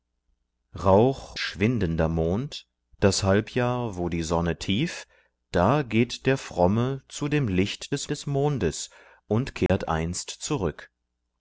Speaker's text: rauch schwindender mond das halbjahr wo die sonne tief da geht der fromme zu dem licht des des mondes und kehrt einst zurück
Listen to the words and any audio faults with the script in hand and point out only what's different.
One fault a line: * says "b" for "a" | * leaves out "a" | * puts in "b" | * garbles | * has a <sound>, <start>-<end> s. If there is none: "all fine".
* has a dropout, 9.7-9.7 s